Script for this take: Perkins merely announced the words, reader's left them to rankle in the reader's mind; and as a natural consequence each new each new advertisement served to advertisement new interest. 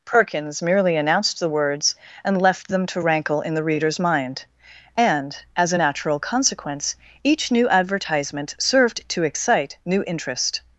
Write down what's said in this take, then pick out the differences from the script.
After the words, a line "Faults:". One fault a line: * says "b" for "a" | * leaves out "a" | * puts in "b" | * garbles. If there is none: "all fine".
Perkins merely announced the words, and left them to rankle in the reader's mind; and as a natural consequence each new advertisement served to excite new interest.
Faults:
* says "and" for "reader's"
* leaves out "each new"
* says "excite" for "advertisement"